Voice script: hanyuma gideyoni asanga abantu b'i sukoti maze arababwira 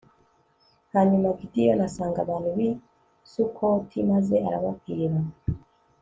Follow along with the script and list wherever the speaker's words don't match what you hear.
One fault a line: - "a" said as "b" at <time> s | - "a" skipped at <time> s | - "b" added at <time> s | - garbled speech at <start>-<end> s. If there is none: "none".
none